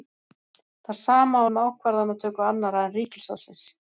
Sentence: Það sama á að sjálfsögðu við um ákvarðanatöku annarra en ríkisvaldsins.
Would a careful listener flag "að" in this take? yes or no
yes